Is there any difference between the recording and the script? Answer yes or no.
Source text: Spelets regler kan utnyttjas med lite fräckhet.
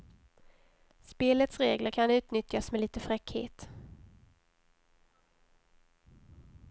no